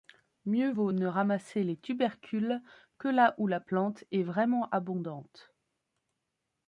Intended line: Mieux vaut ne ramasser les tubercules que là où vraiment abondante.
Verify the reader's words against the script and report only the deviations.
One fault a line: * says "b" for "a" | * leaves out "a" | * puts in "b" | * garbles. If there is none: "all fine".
* puts in "la plante est"